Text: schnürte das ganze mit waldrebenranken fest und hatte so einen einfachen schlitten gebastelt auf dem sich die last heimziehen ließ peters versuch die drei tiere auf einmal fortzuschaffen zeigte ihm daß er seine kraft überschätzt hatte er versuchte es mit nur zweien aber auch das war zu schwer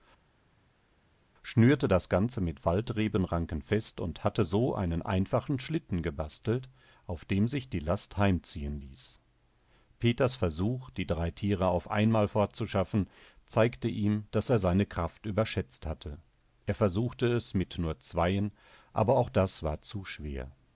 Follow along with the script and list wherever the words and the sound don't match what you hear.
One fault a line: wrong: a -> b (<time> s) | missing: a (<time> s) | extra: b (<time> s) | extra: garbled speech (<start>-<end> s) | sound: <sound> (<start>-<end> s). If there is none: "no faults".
no faults